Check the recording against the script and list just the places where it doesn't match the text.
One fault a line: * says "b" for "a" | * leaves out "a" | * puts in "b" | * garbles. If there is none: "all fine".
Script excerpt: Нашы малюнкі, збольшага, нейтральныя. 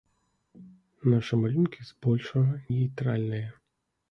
all fine